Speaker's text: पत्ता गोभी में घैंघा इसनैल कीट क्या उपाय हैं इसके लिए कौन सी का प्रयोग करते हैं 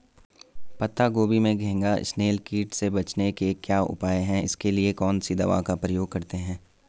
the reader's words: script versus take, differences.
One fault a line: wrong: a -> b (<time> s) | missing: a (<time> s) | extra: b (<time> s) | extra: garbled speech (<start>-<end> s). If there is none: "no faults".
extra: से बचने के (2.7 s)
extra: दवा (5.3 s)